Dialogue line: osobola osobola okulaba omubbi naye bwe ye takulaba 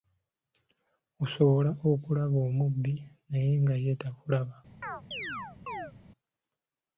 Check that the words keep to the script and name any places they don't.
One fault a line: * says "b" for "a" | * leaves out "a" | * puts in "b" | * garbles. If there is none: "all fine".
* leaves out "osobola"
* says "nga" for "bwe"